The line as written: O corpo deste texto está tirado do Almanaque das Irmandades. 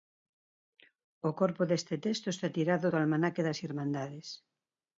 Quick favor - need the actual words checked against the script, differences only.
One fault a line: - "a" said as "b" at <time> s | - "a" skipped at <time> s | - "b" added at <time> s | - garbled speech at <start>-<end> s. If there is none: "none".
none